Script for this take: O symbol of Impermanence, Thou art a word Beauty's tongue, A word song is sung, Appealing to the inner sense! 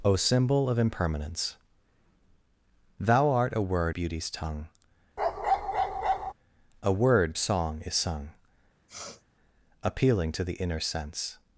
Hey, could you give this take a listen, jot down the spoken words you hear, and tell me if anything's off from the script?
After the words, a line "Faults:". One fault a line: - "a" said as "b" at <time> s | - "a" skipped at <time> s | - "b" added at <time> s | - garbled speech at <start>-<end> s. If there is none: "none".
O symbol of Impermanence, Thou art a word Beauty's tongue, A word song is sung, Appealing to the inner sense!
Faults:
none